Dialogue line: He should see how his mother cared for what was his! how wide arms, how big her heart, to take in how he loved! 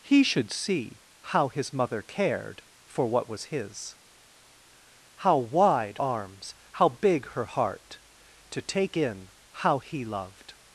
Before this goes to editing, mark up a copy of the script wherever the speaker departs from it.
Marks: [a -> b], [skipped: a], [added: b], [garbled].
He should see how his mother cared for what was his! how wide arms, how big her heart, to take in how he loved!